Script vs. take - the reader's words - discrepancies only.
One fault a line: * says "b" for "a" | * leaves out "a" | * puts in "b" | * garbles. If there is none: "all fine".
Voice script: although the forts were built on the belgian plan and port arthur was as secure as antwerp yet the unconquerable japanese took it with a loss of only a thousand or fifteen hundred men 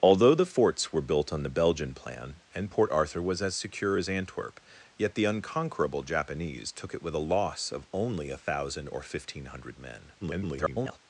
* garbles